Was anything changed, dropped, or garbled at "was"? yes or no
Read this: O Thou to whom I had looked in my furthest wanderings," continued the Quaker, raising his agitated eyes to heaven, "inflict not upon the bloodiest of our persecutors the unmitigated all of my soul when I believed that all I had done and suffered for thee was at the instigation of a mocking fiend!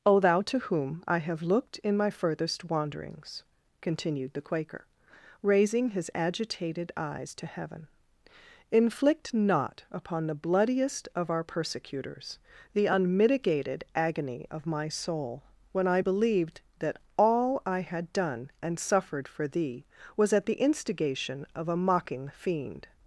no